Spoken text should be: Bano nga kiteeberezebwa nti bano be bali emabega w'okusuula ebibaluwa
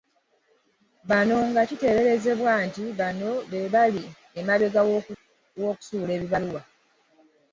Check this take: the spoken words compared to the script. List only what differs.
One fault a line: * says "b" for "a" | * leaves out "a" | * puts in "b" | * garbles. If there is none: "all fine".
all fine